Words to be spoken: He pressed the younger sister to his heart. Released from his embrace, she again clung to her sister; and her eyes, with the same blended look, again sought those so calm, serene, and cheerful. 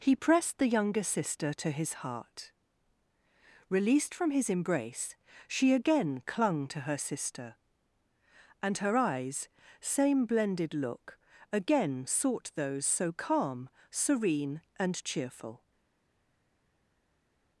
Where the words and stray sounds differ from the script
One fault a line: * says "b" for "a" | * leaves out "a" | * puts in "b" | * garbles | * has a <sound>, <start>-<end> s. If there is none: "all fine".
* leaves out "with the"